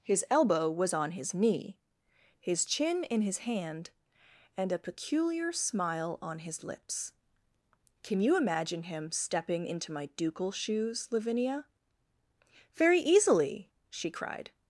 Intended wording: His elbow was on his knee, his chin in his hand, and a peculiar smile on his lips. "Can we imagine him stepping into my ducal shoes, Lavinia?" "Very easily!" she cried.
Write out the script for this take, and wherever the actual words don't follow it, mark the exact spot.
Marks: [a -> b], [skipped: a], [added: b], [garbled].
His elbow was on his knee, his chin in his hand, and a peculiar smile on his lips. "Can [we -> you] imagine him stepping into my ducal shoes, Lavinia?" "Very easily!" she cried.